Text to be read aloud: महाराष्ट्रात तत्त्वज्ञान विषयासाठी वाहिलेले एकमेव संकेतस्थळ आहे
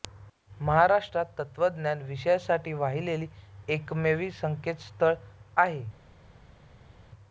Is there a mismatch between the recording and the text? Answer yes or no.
no